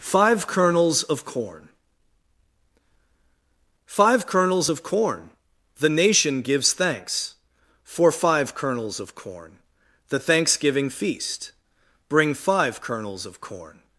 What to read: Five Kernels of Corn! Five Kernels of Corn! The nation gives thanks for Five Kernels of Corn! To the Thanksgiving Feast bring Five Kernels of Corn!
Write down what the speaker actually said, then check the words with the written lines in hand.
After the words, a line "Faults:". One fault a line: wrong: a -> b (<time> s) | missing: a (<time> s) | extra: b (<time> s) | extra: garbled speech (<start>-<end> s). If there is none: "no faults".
Five Kernels of Corn! Five Kernels of Corn! The nation gives thanks for Five Kernels of Corn! the Thanksgiving Feast bring Five Kernels of Corn!
Faults:
missing: To (9.6 s)